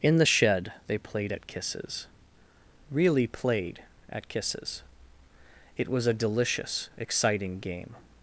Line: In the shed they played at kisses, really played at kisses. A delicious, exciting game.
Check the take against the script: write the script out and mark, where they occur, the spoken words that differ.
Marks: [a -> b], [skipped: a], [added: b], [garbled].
In the shed they played at kisses, really played at kisses. [added: It was] A delicious, exciting game.